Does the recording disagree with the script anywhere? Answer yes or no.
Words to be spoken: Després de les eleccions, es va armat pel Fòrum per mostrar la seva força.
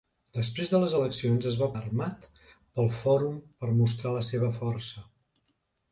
no